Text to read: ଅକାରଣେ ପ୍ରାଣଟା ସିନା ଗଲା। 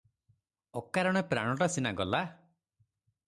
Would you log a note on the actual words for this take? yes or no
no